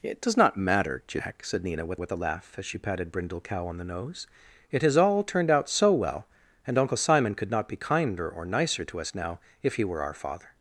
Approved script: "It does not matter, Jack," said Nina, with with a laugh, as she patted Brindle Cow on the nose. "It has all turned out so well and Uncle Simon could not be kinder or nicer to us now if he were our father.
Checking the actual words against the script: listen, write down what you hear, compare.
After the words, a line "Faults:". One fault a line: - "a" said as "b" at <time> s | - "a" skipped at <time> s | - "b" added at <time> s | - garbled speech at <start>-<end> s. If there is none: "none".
"It does not matter, Jack," said Nina, with with a laugh, as she patted Brindle Cow on the nose. "It has all turned out so well and Uncle Simon could not be kinder or nicer to us now if he were our father.
Faults:
none